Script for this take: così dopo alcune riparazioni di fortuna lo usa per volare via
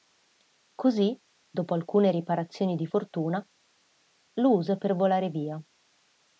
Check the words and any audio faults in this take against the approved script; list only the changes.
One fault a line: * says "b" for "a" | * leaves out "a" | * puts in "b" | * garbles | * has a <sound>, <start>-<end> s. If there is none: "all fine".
all fine